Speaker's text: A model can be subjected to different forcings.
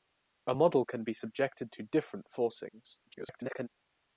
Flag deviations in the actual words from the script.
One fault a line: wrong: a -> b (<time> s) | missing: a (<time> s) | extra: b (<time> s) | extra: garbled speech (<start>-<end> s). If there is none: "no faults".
extra: garbled speech (3.1-3.7 s)